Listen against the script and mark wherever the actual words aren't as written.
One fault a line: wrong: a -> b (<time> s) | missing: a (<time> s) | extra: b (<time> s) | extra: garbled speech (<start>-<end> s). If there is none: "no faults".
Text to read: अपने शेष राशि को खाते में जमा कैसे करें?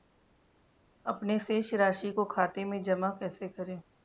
no faults